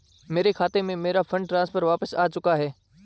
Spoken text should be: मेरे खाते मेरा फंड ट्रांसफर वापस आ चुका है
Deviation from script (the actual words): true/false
true